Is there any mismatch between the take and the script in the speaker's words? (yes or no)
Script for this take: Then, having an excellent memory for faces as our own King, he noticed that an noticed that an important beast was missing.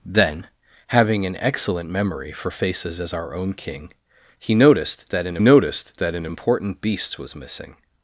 no